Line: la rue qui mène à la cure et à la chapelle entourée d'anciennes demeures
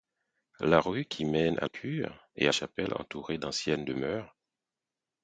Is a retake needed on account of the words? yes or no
yes